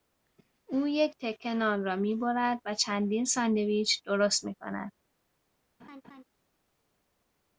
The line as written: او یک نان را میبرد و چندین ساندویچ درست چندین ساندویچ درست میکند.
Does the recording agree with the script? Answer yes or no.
no